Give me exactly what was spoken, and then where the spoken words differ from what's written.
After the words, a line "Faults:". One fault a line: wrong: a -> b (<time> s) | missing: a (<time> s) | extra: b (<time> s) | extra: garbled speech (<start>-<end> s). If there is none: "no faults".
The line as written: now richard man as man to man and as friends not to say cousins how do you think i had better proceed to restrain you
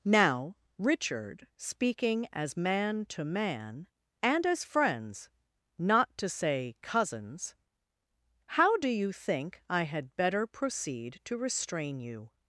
now richard speaking as man to man and as friends not to say cousins how do you think i had better proceed to restrain you
Faults:
wrong: man -> speaking (1.6 s)